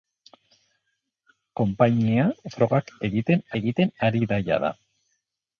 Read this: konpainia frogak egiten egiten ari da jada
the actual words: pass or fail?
pass